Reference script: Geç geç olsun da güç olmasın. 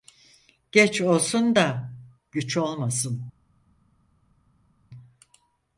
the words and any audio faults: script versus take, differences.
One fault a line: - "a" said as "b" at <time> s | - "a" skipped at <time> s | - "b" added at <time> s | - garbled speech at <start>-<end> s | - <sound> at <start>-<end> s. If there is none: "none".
- "geç" skipped at 1.0 s